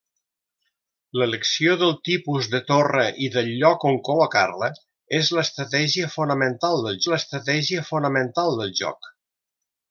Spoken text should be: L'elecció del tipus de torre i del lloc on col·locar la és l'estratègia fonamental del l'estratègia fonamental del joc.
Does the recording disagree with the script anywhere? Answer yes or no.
no